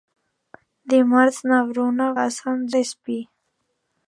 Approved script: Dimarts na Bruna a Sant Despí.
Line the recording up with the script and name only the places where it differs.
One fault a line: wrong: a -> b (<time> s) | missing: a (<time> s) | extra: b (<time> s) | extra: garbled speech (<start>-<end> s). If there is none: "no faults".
no faults